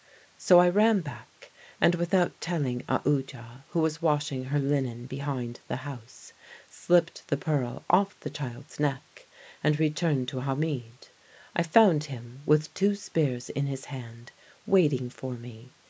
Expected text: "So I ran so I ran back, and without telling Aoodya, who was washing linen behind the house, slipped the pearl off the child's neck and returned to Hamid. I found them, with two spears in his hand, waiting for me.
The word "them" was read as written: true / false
false